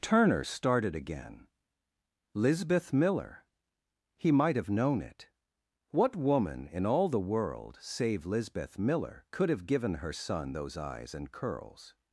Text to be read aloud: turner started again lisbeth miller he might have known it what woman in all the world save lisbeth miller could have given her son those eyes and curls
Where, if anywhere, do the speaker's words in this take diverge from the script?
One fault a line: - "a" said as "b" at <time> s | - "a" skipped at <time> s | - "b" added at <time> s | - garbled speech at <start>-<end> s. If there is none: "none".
none